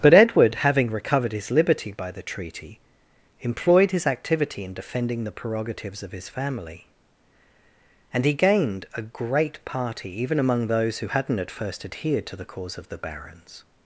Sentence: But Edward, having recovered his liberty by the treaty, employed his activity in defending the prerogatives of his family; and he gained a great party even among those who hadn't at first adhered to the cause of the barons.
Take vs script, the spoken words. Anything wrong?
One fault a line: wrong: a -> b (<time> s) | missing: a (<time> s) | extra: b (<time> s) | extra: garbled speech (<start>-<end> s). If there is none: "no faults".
no faults